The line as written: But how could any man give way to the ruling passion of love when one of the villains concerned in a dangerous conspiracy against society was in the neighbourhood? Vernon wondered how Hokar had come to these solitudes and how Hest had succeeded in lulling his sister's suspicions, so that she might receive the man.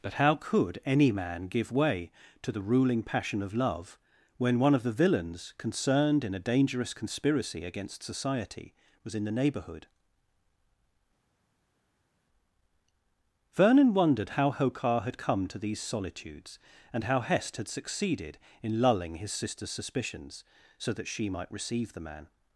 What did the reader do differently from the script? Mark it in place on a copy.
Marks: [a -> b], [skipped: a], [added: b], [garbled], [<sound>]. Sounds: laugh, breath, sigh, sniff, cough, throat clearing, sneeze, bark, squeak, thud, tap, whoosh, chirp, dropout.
But how could any man give way to the ruling passion of love when one of the villains concerned in a dangerous conspiracy against society was in the neighbourhood? Vernon wondered how Hokar had come to these solitudes and how Hest had succeeded in lulling his sister's suspicions, so that she might receive the man.